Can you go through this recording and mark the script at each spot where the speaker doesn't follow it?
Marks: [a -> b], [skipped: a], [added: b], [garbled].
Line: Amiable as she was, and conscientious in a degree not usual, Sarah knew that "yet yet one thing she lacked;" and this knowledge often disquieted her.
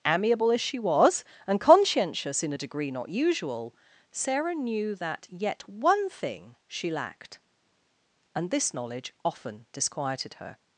Amiable as she was, and conscientious in a degree not usual, Sarah knew that "yet [skipped: yet] one thing she lacked;" and this knowledge often disquieted her.